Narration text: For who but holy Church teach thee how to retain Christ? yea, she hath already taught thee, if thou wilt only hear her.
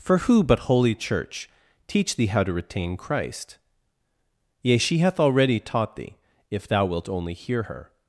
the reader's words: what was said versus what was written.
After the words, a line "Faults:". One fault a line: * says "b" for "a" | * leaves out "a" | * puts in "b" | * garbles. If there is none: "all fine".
For who but holy Church teach thee how to retain Christ? yea, she hath already taught thee, if thou wilt only hear her.
Faults:
all fine